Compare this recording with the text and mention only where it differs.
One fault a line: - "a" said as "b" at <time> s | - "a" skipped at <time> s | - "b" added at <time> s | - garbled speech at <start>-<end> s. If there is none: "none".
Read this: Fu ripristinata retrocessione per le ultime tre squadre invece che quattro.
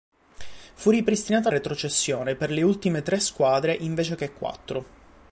none